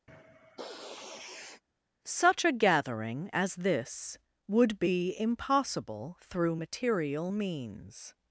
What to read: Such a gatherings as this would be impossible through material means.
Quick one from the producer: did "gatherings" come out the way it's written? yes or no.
no